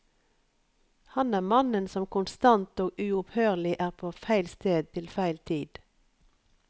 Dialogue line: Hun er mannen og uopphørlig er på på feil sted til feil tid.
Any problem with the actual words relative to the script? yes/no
yes